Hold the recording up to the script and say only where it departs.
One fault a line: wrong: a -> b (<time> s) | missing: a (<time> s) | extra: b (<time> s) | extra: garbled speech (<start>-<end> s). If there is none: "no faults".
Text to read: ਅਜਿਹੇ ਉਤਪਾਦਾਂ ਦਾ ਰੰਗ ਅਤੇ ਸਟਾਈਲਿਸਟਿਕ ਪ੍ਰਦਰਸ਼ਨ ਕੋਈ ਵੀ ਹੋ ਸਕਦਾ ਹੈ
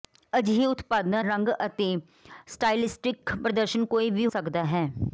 missing: ਦਾ (1.2 s)
missing: ਹੋ (4.3 s)